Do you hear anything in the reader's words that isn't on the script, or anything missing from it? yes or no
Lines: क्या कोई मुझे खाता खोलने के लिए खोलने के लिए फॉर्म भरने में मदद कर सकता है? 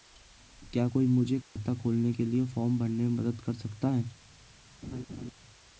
yes